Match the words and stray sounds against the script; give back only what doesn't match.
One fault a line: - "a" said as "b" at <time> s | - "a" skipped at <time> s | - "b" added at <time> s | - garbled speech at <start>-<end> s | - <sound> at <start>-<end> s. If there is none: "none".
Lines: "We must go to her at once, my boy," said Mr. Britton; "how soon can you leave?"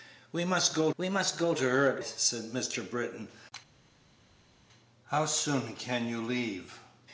- "we must go" added at 1.0 s
- "once my boy" skipped at 2.0 s